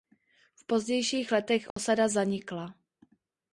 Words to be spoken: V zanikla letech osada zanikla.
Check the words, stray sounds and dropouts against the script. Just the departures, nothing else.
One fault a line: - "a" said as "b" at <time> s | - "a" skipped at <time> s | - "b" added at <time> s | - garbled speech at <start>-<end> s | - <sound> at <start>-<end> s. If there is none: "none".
- "zanikla" said as "pozdějších" at 0.7 s
- dropout at 1.7-1.8 s